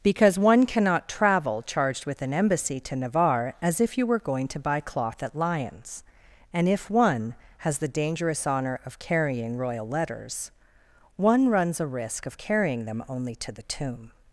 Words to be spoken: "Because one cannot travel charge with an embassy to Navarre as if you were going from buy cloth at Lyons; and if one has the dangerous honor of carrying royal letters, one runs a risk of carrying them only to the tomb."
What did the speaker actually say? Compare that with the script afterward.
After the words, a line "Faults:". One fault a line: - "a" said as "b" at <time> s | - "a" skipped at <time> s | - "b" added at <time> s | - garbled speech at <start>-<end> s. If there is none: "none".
"Because one cannot travel charged with an embassy to Navarre as if you were going to buy cloth at Lyons; and if one has the dangerous honor of carrying royal letters, one runs a risk of carrying them only to the tomb."
Faults:
- "charge" said as "charged" at 1.6 s
- "from" said as "to" at 4.5 s